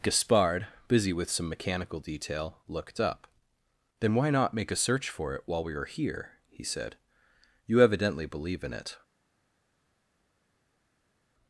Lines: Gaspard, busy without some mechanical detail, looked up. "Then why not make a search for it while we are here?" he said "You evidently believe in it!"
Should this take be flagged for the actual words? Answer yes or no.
yes